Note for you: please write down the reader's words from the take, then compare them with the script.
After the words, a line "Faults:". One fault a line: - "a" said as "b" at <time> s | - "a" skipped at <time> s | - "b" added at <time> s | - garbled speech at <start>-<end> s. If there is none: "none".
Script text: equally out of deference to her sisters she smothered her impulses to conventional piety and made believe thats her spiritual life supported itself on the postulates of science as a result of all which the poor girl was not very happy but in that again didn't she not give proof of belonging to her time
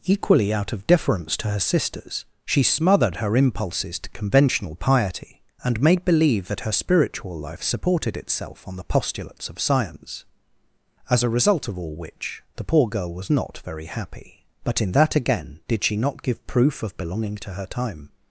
equally out of deference to her sisters she smothered her impulses to conventional piety and made believe that her spiritual life supported itself on the postulates of science as a result of all which the poor girl was not very happy but in that again did she not give proof of belonging to her time
Faults:
- "thats" said as "that" at 6.5 s
- "didn't" said as "did" at 15.7 s